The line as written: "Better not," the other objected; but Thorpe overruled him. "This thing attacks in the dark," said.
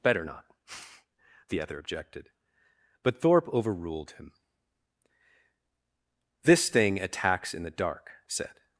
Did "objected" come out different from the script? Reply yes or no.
no